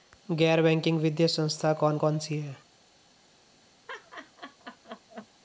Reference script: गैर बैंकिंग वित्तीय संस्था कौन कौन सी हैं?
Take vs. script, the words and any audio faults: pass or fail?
fail